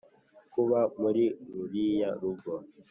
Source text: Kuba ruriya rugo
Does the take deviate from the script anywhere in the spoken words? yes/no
yes